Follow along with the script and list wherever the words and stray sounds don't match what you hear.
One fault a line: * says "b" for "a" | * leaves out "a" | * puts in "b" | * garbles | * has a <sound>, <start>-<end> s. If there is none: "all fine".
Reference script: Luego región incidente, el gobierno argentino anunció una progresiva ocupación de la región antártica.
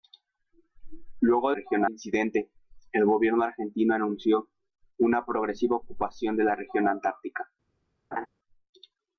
* has a laugh, 8.1-8.3 s